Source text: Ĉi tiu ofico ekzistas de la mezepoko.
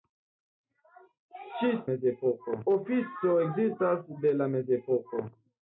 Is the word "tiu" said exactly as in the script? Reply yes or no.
no